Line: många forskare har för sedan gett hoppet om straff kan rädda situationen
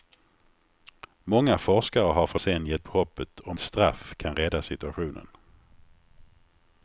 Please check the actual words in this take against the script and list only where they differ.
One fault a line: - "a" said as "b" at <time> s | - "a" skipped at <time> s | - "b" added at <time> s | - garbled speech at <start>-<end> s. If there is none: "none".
none